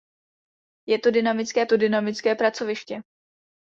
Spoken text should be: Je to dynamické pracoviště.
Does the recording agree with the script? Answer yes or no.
no